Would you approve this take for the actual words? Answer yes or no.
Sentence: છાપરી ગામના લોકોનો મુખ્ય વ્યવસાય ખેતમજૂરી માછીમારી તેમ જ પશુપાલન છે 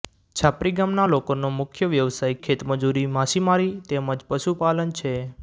yes